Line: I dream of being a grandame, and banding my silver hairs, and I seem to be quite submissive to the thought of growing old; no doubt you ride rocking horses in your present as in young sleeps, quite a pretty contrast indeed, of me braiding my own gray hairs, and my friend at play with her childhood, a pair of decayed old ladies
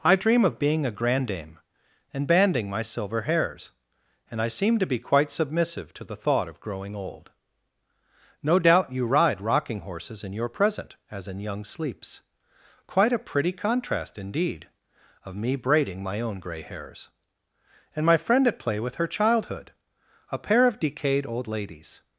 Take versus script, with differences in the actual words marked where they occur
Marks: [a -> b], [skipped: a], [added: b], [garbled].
I dream of being a grandame, and banding my silver hairs, and I seem to be quite submissive to the thought of growing old; no doubt you ride rocking horses in your present as in young sleeps, quite a pretty contrast indeed, of me braiding my own gray hairs, and my friend at play with her childhood, a pair of decayed old ladies